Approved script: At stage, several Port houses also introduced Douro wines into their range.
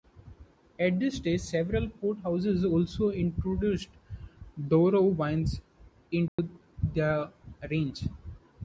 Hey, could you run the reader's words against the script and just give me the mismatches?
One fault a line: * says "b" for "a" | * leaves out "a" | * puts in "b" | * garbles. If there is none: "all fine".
* puts in "this"